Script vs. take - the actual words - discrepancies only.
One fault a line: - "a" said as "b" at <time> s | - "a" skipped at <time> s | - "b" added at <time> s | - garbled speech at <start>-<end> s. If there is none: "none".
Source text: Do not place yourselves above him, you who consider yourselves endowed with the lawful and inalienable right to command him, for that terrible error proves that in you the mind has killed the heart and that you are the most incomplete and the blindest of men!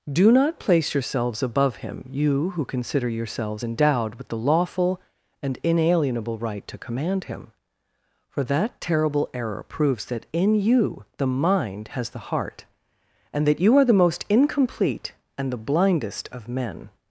- "killed" skipped at 12.1 s